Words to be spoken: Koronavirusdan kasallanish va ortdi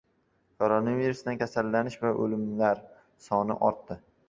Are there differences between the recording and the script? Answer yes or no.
yes